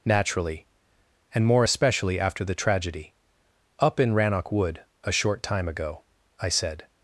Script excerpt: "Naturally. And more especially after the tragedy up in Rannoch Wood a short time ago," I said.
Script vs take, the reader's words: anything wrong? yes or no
no